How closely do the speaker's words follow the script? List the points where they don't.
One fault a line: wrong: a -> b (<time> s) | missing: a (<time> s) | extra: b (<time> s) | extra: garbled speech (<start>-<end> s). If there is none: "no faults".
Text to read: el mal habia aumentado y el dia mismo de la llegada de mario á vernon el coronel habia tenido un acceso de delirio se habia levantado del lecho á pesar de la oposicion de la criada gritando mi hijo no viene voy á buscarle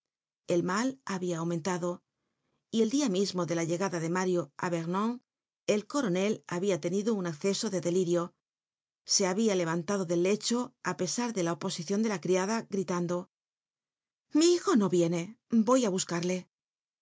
no faults